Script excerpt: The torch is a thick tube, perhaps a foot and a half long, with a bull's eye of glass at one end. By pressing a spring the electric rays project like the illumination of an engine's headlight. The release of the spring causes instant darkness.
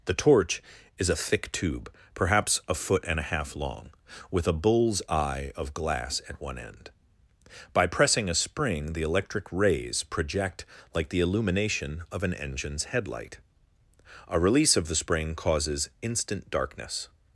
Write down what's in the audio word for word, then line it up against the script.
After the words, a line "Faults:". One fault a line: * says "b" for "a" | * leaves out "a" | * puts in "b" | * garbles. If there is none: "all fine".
The torch is a thick tube, perhaps a foot and a half long, with a bull's eye of glass at one end. By pressing a spring the electric rays project like the illumination of an engine's headlight. A release of the spring causes instant darkness.
Faults:
* says "A" for "The"